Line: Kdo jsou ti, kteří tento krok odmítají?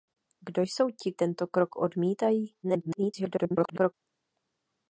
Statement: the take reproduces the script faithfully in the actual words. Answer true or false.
false